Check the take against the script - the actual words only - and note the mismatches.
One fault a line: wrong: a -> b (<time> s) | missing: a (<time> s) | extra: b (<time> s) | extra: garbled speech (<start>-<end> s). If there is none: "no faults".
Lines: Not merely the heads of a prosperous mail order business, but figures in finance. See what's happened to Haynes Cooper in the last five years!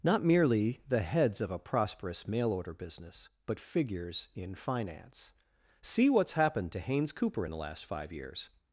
no faults